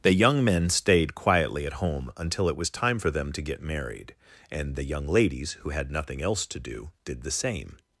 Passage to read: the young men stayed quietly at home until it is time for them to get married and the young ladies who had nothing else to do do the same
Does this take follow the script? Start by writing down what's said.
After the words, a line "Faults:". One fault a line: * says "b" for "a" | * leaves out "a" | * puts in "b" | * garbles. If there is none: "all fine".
the young men stayed quietly at home until it was time for them to get married and the young ladies who had nothing else to do did the same
Faults:
* says "was" for "is"
* says "did" for "do"